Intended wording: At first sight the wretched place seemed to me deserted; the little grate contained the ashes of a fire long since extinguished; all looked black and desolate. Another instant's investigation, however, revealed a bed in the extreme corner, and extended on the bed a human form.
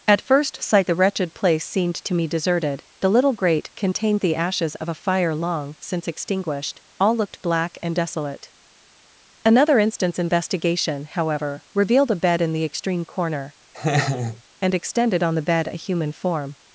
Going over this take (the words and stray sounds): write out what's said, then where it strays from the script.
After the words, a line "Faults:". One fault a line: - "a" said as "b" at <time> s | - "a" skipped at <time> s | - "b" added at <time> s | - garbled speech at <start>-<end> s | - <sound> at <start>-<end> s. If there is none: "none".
At first sight the wretched place seemed to me deserted; the little grate contained the ashes of a fire long since extinguished; all looked black and desolate. Another instant's investigation, however, revealed a bed in the extreme corner, and extended on the bed a human form.
Faults:
- laugh at 13.7-14.4 s